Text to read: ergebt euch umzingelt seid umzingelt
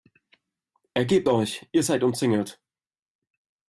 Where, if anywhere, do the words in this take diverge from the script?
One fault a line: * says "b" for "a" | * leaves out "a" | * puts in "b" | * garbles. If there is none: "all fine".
* says "ihr" for "umzingelt"